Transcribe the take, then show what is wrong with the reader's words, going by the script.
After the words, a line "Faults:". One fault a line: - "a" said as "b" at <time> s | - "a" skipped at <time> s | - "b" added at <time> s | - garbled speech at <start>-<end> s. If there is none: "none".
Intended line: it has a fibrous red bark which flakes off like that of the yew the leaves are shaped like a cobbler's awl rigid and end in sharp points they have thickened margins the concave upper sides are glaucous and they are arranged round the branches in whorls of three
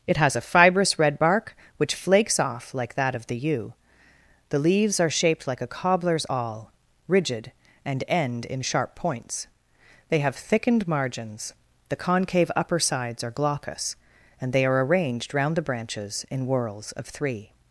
it has a fibrous red bark which flakes off like that of the yew the leaves are shaped like a cobbler's awl rigid and end in sharp points they have thickened margins the concave upper sides are glaucous and they are arranged round the branches in whorls of three
Faults:
none